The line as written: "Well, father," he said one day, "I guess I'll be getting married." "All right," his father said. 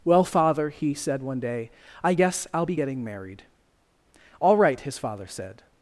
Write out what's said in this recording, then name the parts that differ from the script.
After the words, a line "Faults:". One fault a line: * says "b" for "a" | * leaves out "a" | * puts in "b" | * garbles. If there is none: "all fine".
"Well, father," he said one day, "I guess I'll be getting married." "All right," his father said.
Faults:
all fine